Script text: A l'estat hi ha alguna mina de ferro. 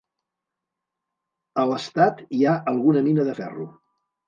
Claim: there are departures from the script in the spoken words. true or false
false